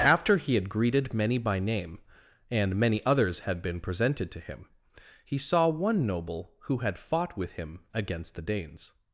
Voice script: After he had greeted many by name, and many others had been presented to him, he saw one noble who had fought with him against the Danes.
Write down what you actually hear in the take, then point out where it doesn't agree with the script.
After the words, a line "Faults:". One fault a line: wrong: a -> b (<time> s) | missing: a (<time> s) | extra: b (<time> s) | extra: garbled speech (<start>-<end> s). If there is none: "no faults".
After he had greeted many by name, and many others had been presented to him, he saw one noble who had fought with him against the Danes.
Faults:
no faults